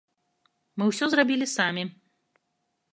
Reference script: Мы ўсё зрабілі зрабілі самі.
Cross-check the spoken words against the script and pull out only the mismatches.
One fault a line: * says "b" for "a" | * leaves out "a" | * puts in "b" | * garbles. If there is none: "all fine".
* leaves out "зрабілі"